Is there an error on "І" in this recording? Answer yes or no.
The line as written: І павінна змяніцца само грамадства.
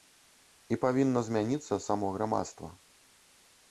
no